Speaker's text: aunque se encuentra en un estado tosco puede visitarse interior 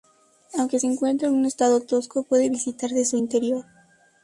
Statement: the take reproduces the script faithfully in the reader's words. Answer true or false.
false